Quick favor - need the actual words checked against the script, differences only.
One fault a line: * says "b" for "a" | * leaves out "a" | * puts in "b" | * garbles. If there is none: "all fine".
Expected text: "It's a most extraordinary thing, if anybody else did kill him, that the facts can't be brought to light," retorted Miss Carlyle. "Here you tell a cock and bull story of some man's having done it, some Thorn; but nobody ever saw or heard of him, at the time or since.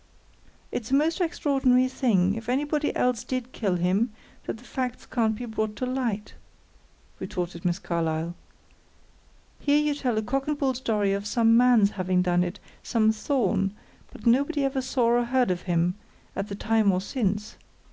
all fine